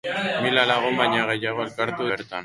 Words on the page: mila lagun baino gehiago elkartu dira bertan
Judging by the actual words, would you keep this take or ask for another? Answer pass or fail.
fail